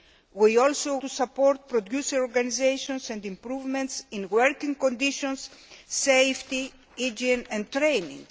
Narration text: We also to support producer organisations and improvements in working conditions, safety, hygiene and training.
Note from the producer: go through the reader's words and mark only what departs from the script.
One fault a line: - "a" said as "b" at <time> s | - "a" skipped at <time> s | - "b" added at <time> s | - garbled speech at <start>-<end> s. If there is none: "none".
none